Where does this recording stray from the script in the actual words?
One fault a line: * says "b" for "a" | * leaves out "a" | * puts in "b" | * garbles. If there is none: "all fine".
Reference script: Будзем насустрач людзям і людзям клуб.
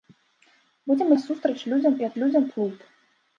all fine